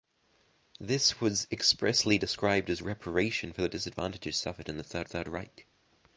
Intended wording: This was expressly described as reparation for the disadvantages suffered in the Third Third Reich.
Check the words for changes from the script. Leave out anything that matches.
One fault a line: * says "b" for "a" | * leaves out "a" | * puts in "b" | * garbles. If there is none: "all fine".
all fine